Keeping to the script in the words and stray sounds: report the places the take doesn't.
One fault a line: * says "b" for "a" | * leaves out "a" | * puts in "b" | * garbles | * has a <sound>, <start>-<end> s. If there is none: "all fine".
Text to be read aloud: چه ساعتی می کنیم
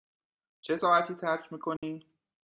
* puts in "ترک"
* has a dropout, 1.8-1.8 s